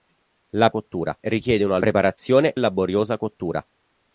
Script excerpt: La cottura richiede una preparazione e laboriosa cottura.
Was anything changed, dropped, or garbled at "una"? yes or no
no